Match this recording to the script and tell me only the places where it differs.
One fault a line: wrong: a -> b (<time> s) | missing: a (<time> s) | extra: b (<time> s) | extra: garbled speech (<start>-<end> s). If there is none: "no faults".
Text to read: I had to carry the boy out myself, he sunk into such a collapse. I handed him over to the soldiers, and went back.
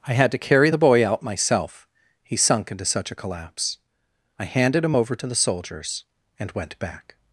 no faults